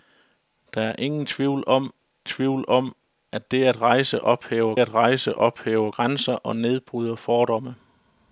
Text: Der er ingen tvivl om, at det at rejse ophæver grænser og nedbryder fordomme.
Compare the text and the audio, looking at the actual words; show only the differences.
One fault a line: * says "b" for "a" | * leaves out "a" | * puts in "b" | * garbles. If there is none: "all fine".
* puts in "tvivl om"
* puts in "at rejse ophæver"